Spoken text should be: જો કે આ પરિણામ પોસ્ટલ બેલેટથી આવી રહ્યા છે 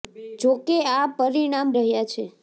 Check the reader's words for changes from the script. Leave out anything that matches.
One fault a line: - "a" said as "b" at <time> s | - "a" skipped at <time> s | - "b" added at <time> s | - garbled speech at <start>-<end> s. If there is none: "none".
- "પોસ્ટલ બેલેટથી આવી" skipped at 1.7 s